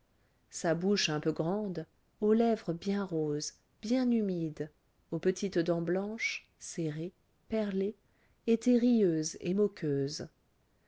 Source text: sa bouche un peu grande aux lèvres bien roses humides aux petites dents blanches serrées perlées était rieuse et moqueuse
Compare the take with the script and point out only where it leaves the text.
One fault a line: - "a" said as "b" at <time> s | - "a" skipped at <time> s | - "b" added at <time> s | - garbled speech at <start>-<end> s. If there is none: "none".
- "bien" added at 3.8 s